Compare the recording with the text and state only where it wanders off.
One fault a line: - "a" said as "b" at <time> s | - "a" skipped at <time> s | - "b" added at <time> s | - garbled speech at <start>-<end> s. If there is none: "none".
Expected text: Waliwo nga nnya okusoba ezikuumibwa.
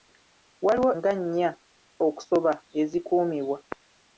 none